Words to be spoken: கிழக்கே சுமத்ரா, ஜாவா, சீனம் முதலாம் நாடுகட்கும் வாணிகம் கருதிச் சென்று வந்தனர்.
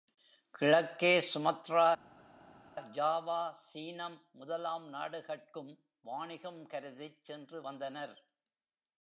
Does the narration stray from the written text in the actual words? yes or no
no